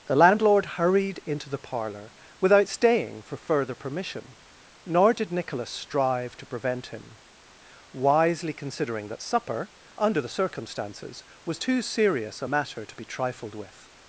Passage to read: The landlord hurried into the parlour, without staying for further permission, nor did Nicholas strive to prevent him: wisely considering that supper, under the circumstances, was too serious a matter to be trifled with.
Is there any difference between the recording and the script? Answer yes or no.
no